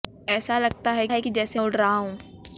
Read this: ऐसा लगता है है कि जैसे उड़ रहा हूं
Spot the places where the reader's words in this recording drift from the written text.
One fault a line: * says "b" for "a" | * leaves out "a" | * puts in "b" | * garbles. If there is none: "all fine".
all fine